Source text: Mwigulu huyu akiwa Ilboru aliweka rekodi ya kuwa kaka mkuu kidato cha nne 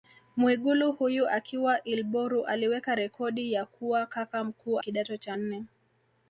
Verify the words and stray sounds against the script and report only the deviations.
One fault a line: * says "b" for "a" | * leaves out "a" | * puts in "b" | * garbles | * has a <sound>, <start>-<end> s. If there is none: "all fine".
all fine